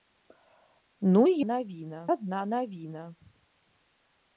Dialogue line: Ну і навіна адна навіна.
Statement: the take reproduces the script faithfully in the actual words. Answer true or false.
true